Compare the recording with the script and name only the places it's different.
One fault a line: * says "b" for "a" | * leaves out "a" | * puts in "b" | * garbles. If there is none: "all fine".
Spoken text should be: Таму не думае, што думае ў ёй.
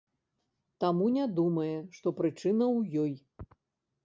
* says "прычына" for "думае"